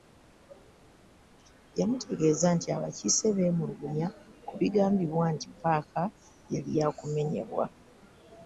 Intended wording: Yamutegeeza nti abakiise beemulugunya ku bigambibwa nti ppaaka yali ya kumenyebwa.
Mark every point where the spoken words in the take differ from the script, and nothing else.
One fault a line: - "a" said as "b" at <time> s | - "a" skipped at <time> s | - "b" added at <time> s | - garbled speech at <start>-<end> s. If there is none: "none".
none